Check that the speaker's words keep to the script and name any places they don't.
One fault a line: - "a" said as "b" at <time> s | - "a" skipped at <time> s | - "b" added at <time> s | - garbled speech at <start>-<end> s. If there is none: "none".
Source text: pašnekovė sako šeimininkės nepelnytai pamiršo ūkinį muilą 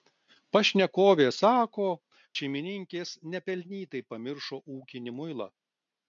none